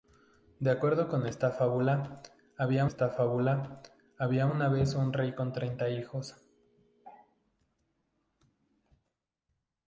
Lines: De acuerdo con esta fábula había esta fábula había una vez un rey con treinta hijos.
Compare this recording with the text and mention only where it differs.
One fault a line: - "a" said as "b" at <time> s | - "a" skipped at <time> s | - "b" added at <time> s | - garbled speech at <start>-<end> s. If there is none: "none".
none